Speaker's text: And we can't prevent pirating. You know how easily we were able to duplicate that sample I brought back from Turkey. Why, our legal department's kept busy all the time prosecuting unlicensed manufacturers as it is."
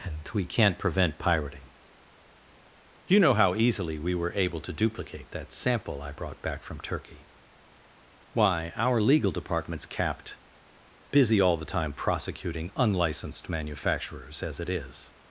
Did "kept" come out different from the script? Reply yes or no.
yes